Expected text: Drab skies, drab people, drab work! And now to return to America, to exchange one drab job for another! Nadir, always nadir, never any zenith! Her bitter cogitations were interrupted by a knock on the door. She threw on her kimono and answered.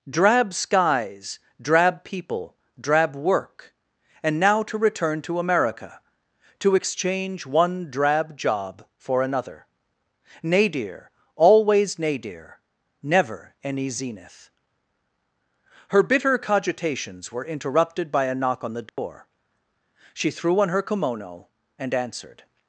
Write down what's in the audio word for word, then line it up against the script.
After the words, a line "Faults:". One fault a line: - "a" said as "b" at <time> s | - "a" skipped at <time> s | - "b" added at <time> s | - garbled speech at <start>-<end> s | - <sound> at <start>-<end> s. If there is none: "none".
Drab skies, drab people, drab work! And now to return to America, to exchange one drab job for another! Nadir, always nadir, never any zenith! Her bitter cogitations were interrupted by a knock on the door. She threw on her kimono and answered.
Faults:
- dropout at 18.9-19.0 s